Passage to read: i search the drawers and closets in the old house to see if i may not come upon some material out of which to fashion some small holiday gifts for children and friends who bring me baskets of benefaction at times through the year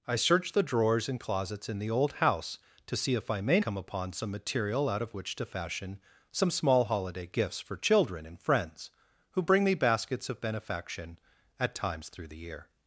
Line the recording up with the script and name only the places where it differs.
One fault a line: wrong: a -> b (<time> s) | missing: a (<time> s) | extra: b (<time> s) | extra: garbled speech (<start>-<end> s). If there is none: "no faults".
missing: not (3.6 s)